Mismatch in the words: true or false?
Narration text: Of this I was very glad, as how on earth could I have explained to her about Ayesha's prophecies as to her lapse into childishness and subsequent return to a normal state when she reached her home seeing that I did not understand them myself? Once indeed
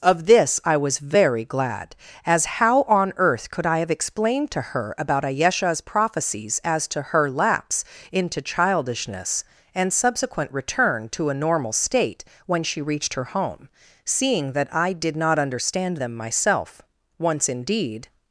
false